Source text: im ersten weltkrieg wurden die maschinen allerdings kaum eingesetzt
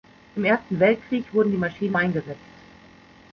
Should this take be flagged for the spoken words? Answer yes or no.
yes